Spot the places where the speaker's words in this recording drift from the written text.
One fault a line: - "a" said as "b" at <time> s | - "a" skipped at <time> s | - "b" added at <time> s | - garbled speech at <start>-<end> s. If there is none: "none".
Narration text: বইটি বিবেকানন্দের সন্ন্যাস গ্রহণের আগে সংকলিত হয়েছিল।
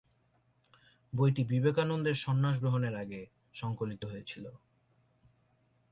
none